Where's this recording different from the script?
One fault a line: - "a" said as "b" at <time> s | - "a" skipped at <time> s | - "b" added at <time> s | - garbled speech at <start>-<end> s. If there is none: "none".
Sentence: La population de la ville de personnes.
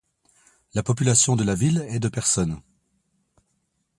- "est" added at 1.9 s